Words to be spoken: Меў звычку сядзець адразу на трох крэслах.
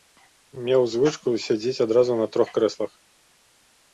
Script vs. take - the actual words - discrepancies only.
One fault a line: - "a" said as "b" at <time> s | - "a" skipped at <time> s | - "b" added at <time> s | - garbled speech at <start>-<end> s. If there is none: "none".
none